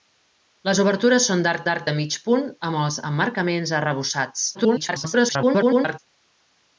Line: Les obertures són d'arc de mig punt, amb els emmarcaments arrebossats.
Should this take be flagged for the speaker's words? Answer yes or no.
yes